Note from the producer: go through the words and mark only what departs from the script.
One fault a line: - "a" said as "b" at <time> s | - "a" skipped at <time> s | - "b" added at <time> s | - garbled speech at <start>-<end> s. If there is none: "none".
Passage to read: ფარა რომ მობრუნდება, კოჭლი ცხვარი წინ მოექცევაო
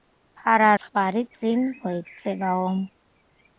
- "რომ მობრუნდება კოჭლი" skipped at 0.7 s